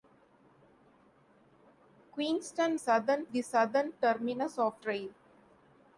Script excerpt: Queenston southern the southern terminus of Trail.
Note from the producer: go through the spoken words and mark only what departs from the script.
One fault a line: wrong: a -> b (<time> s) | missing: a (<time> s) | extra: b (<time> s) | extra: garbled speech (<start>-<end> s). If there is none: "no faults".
no faults